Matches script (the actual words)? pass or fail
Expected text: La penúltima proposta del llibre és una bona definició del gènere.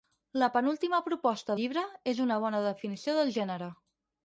fail